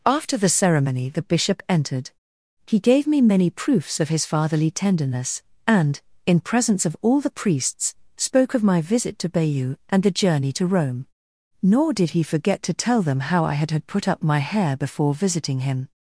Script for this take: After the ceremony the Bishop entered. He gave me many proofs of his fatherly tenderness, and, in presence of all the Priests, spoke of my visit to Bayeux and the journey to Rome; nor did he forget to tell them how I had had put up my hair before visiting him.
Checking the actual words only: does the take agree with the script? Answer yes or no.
yes